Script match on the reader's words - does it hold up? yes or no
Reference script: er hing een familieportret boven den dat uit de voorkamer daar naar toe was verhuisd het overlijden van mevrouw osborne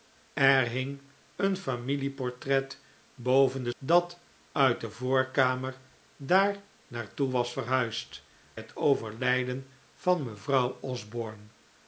yes